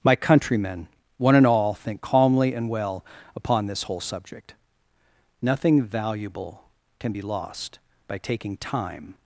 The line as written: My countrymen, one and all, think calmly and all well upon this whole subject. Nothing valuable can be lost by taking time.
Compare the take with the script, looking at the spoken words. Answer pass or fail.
fail